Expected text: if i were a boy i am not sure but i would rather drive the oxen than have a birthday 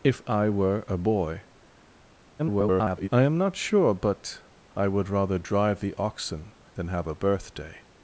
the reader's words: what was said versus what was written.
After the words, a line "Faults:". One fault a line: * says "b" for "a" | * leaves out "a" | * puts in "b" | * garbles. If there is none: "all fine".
if i were a boy [garbled] i am not sure but i would rather drive the oxen than have a birthday
Faults:
* garbles